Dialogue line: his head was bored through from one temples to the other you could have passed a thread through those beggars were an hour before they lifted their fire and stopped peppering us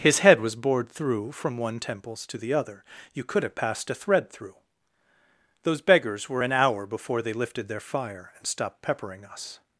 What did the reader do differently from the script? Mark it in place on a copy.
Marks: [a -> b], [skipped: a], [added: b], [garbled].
his head was bored through from one temples to the other you could have passed a thread through those beggars were an hour before they lifted their fire and stopped peppering us